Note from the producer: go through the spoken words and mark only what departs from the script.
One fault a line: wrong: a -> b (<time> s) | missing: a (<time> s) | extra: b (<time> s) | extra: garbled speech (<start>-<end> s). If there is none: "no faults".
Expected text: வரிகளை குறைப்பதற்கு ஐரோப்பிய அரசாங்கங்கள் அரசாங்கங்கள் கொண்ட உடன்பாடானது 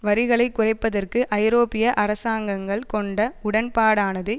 missing: அரசாங்கங்கள் (2.8 s)